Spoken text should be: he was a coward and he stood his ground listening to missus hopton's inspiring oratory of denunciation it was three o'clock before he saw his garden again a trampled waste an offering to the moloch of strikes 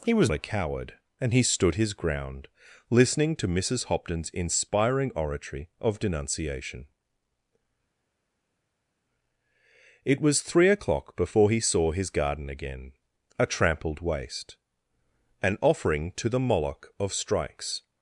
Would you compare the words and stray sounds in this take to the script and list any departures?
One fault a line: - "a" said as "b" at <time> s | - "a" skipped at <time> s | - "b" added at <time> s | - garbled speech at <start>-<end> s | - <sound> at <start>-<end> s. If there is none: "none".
none